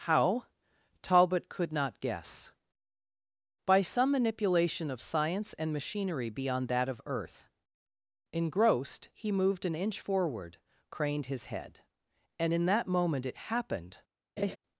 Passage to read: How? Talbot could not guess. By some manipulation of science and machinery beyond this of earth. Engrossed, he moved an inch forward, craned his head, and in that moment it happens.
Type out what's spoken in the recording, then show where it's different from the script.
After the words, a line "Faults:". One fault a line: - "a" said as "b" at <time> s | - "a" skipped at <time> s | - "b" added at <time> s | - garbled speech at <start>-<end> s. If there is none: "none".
How? Talbot could not guess. By some manipulation of science and machinery beyond that of earth. Engrossed, he moved an inch forward, craned his head, and in that moment it happened.
Faults:
- "this" said as "that" at 6.7 s
- "happens" said as "happened" at 13.5 s